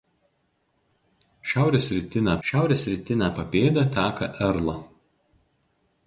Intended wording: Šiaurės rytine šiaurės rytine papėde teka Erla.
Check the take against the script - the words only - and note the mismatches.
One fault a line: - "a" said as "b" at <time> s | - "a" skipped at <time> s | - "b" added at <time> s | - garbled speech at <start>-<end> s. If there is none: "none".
none